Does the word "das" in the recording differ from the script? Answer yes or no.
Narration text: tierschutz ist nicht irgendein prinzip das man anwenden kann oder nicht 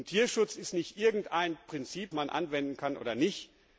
yes